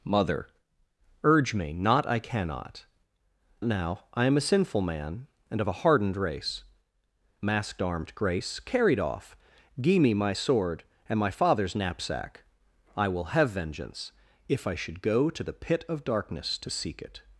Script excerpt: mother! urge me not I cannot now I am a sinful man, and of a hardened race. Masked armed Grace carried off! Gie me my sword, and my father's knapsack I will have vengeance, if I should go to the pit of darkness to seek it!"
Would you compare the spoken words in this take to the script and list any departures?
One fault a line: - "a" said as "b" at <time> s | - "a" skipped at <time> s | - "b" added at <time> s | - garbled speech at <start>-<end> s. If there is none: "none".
none